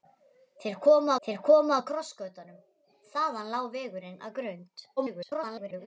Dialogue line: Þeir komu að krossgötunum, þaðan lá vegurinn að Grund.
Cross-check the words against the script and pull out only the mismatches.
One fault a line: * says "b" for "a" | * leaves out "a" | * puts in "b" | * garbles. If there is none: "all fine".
* puts in "þeir komu"
* garbles